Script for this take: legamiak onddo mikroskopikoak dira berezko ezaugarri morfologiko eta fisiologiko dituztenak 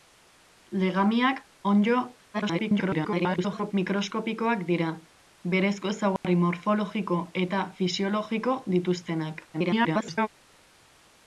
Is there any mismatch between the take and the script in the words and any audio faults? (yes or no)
yes